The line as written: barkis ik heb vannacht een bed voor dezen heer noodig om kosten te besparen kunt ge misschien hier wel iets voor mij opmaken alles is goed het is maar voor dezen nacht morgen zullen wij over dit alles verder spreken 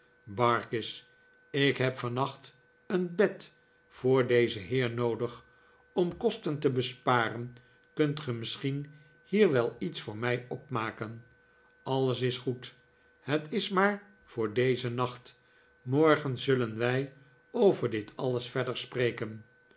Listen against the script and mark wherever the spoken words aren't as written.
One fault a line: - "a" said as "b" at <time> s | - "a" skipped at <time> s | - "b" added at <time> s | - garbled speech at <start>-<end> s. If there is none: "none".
none